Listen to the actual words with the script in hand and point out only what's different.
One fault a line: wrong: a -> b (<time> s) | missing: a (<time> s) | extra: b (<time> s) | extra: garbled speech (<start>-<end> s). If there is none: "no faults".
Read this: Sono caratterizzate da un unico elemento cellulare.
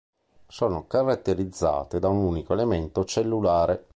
no faults